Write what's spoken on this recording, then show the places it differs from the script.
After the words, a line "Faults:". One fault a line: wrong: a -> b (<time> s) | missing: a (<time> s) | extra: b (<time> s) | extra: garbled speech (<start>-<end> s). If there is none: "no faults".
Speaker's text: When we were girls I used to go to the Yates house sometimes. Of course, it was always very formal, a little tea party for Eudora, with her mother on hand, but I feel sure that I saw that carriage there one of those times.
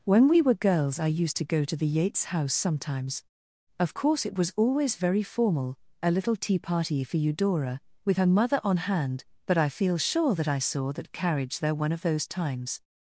When we were girls I used to go to the Yates house sometimes. Of course, it was always very formal, a little tea party for Eudora, with her mother on hand, but I feel sure that I saw that carriage there one of those times.
Faults:
no faults